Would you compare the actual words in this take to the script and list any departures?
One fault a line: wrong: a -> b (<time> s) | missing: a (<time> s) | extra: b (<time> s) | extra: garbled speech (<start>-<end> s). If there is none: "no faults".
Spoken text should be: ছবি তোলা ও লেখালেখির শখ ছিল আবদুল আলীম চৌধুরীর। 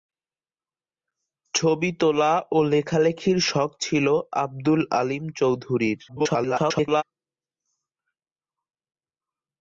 extra: garbled speech (6.1-7.0 s)